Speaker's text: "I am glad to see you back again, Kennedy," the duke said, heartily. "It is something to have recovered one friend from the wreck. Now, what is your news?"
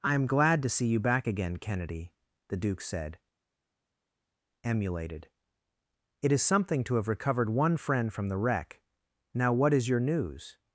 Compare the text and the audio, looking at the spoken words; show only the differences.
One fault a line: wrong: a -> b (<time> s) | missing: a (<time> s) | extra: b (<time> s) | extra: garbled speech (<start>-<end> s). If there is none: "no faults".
wrong: heartily -> emulated (4.6 s)